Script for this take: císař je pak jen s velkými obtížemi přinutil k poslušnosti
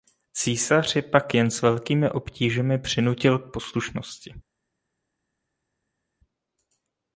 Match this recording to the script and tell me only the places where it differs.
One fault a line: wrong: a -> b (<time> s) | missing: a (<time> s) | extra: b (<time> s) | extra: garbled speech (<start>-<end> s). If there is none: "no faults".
no faults